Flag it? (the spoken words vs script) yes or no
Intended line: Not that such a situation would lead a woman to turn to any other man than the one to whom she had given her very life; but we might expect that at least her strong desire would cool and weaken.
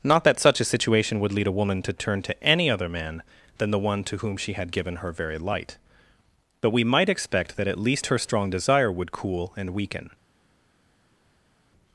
yes